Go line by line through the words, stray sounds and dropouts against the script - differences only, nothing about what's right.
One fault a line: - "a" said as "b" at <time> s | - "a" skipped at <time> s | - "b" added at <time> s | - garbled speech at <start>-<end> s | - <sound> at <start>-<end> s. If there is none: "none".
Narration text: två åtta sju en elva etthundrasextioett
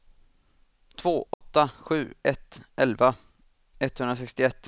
- dropout at 1.3-1.4 s
- "en" said as "ett" at 2.2 s